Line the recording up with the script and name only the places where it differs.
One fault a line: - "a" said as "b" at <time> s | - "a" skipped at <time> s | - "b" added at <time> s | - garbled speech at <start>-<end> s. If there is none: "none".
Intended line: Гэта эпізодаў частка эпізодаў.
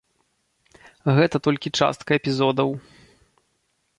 - "эпізодаў" said as "толькі" at 1.5 s